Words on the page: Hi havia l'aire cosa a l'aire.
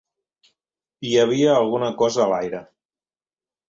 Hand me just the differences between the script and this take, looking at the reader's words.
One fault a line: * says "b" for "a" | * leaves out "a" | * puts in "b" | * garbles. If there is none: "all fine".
* says "alguna" for "l'aire"